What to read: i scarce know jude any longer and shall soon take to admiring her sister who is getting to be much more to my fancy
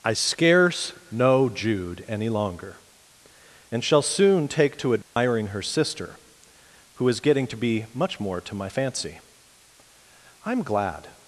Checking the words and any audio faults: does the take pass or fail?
fail